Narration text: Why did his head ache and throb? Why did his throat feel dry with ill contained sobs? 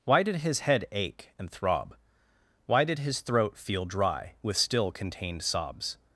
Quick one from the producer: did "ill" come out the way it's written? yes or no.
no